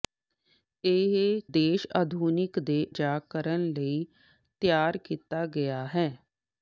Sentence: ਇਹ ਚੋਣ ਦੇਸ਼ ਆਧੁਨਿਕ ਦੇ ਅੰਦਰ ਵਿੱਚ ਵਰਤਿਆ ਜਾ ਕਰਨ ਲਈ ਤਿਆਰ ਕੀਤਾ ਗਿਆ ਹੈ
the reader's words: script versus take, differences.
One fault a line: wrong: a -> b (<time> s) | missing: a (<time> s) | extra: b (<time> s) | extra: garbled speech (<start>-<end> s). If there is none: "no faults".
missing: ਚੋਣ (1.4 s)
missing: ਅੰਦਰ ਵਿੱਚ ਵਰਤਿਆ (2.9 s)